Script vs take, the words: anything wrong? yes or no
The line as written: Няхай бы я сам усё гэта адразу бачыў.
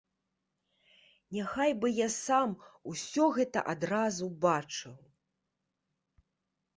no